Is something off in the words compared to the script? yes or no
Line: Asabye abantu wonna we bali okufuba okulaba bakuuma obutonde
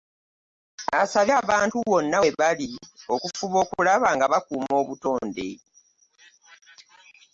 yes